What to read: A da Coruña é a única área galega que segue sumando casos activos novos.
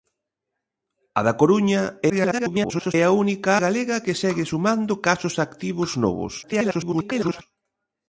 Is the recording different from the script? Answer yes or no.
yes